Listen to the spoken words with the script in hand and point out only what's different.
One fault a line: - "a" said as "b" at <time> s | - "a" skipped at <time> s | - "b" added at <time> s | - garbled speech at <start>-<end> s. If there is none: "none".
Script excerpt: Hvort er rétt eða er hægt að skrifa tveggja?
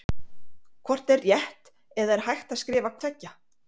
none